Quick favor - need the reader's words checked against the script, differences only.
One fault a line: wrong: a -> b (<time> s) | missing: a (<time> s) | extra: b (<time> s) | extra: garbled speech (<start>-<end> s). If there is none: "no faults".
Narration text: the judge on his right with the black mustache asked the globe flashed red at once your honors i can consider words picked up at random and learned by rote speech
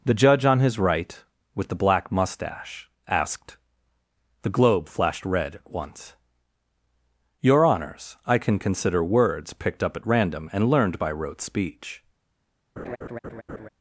no faults